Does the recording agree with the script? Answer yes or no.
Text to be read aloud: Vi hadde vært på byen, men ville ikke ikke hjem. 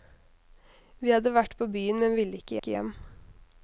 yes